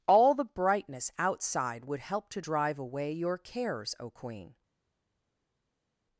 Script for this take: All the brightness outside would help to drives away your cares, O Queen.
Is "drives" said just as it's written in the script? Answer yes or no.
no